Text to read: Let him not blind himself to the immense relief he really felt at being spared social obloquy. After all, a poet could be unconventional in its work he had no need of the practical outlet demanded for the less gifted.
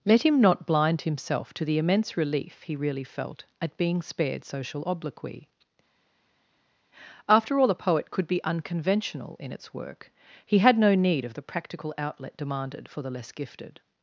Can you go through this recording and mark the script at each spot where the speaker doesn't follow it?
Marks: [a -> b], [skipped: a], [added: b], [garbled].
Let him not blind himself to the immense relief he really felt at being spared social obloquy. After all, a poet could be unconventional in its work he had no need of the practical outlet demanded for the less gifted.